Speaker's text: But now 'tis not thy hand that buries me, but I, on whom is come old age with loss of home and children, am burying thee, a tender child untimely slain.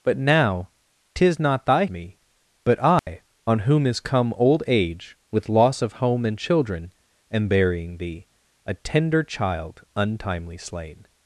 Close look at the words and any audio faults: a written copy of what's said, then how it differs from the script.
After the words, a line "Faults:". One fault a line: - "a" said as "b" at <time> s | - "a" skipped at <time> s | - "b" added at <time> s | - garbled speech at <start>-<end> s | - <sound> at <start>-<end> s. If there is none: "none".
But now 'tis not thy me, but I, on whom is come old age with loss of home and children, am burying thee, a tender child untimely slain.
Faults:
- "hand that buries" skipped at 1.9 s
- dropout at 3.0-3.1 s